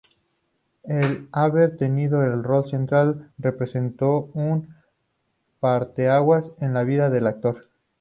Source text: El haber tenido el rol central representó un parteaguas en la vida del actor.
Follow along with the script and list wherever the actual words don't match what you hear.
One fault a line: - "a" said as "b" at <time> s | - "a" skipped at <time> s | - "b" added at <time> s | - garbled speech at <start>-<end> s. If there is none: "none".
none